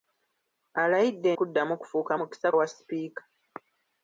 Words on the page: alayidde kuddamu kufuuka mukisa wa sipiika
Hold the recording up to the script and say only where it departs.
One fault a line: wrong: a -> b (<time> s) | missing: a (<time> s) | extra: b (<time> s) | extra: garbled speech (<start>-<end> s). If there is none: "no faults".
no faults